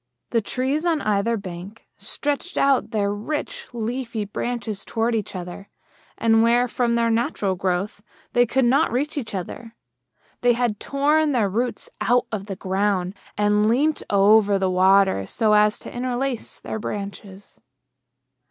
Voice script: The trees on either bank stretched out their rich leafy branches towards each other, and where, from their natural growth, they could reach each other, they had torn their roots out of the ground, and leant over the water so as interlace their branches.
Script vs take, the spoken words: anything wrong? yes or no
yes